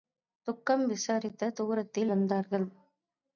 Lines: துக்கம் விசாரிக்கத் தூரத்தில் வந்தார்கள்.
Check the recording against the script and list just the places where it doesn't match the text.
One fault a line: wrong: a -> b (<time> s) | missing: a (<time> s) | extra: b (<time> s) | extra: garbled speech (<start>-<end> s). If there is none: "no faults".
no faults